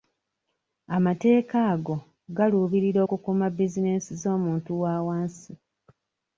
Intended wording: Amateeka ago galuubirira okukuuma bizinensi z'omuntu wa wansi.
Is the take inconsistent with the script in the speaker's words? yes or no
no